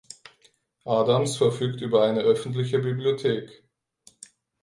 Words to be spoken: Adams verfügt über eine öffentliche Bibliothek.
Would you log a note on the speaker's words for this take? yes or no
no